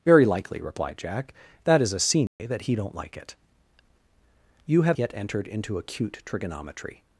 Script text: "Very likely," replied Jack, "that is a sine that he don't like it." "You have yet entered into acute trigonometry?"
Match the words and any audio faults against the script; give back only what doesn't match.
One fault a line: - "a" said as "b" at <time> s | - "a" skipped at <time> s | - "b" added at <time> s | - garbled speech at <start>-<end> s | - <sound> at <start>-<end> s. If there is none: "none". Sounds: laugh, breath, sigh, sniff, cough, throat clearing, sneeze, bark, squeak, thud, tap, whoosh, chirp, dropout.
- dropout at 2.3-2.4 s